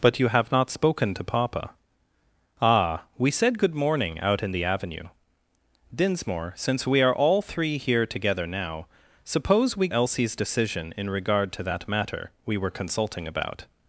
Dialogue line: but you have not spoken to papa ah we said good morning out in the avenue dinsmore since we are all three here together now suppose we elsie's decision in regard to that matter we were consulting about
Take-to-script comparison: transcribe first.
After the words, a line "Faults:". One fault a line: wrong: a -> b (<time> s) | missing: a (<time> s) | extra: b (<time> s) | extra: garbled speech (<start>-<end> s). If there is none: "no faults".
but you have not spoken to papa ah we said good morning out in the avenue dinsmore since we are all three here together now suppose we elsie's decision in regard to that matter we were consulting about
Faults:
no faults